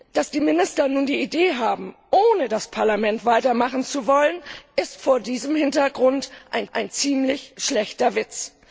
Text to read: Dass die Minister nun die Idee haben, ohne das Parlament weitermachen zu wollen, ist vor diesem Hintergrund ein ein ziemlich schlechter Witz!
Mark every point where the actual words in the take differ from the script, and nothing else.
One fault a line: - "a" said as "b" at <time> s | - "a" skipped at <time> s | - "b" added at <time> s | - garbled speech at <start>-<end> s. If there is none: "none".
none